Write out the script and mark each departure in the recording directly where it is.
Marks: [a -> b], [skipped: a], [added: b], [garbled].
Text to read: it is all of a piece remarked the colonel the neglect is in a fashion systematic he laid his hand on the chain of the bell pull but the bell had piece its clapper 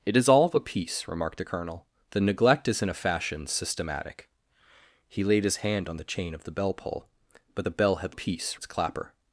it is all of a piece remarked the colonel the neglect is in a fashion systematic he laid his hand on the chain of the bell pull but the bell had piece its clapper